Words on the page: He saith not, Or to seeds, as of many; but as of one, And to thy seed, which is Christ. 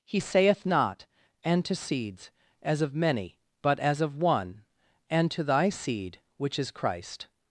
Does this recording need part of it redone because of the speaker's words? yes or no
yes